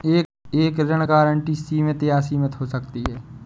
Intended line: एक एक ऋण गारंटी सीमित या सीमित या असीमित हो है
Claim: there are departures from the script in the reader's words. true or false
true